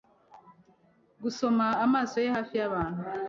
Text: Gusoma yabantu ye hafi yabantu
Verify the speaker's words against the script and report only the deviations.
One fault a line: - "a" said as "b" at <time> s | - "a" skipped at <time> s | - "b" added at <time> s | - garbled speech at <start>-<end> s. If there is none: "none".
- "yabantu" said as "amaso" at 1.9 s